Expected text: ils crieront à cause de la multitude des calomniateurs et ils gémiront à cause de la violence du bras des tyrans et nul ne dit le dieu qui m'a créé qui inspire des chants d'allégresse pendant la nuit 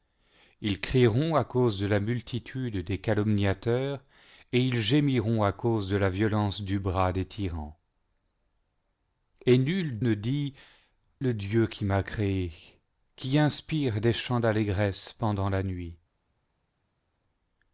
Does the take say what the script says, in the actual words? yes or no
yes